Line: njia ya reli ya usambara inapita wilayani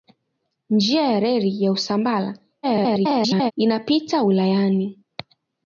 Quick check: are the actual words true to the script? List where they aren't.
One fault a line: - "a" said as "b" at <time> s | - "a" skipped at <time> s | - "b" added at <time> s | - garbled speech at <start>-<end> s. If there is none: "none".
- garbled speech at 2.6-3.5 s